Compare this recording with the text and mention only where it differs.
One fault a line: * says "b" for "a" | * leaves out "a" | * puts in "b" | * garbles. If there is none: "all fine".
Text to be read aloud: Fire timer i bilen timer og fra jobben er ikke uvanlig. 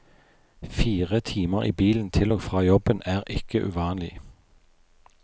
* says "til" for "timer"